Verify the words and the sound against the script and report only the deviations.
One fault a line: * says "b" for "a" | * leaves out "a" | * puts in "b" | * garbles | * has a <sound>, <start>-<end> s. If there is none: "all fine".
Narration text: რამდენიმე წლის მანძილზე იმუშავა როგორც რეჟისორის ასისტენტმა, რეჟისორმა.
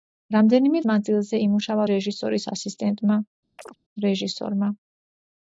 * leaves out "წლის"
* leaves out "როგორც"
* has a chirp, 3.6-3.8 s